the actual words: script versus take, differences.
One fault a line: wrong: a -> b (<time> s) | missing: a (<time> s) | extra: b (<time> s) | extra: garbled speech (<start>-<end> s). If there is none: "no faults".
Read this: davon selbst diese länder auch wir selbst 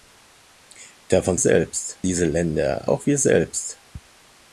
no faults